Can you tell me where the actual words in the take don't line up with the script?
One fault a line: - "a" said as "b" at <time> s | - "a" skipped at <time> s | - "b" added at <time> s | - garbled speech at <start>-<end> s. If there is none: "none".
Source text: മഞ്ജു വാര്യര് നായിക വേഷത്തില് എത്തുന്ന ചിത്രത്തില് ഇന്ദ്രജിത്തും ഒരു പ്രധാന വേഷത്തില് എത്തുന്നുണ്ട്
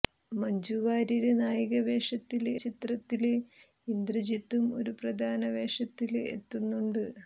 - "എത്തുന്ന" skipped at 2.5 s